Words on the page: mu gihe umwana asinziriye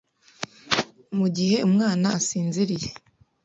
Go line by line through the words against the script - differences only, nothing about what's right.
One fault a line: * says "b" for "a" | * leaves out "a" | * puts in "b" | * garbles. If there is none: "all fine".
all fine